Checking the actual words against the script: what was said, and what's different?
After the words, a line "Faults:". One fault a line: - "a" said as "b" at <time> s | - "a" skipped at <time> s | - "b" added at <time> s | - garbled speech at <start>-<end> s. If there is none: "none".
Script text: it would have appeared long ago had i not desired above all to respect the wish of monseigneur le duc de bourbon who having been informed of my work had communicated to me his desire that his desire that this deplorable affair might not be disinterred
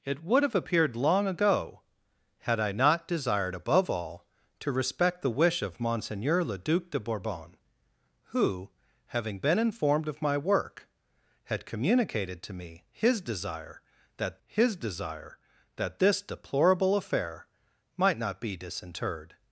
it would have appeared long ago had i not desired above all to respect the wish of monseigneur le duc de bourbon who having been informed of my work had communicated to me his desire that his desire that this deplorable affair might not be disinterred
Faults:
none